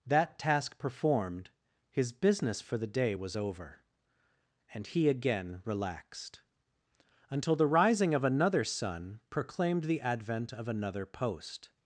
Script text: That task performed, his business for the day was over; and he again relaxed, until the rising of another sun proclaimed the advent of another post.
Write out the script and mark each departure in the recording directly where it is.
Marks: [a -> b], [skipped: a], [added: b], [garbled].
That task performed, his business for the day was over; and he again relaxed, until the rising of another sun proclaimed the advent of another post.